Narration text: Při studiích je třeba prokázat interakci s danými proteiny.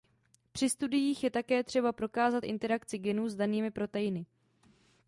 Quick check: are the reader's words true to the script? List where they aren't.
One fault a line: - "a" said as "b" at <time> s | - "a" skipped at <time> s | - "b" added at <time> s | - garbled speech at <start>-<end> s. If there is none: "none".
- "také" added at 1.3 s
- "genů" added at 3.0 s